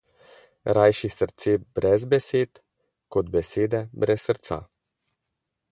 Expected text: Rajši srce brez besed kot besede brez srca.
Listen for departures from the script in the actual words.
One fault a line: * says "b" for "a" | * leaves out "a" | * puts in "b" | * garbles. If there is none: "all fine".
all fine